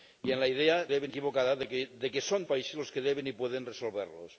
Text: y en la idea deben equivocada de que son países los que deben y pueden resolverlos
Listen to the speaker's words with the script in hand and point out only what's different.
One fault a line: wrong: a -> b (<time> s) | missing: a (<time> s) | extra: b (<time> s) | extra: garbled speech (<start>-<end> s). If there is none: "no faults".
no faults